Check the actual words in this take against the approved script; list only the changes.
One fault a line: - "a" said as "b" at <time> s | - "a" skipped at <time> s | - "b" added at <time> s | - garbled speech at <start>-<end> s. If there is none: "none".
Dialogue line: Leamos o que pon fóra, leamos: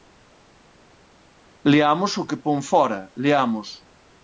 none